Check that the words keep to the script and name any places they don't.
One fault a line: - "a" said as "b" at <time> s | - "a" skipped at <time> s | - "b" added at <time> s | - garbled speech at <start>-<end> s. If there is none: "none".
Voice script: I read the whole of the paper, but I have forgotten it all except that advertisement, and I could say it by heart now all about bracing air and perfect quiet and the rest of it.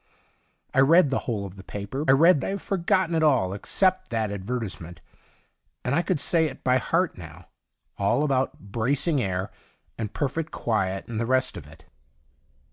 - "but" said as "read" at 2.1 s